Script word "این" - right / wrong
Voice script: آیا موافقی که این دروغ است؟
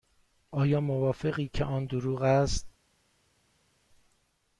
wrong